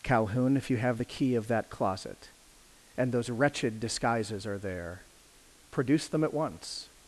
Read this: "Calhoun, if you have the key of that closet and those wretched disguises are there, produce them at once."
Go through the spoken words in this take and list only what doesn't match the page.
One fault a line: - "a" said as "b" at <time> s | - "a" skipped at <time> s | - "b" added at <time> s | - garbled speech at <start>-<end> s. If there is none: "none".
none